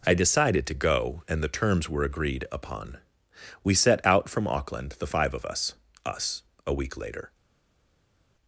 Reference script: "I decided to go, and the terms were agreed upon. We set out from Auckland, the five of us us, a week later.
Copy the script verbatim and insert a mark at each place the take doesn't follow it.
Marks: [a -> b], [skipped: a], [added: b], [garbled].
"I decided to go, and the terms were agreed upon. We set out from Auckland, the five of us us, a week later.